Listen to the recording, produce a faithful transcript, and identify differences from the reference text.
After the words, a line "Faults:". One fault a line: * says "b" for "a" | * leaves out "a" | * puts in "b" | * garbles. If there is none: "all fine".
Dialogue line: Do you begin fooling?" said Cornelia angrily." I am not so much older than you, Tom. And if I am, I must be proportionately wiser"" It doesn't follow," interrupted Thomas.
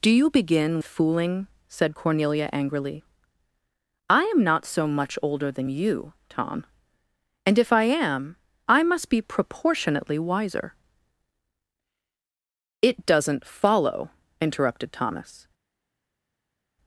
Do you begin fooling?" said Cornelia angrily." I am not so much older than you, Tom. And if I am, I must be proportionately wiser"" It doesn't follow," interrupted Thomas.
Faults:
all fine